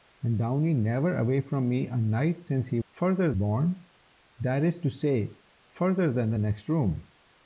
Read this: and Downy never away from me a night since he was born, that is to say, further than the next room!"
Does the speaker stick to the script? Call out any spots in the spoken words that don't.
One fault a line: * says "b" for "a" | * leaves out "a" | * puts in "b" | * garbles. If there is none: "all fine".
* says "further" for "was"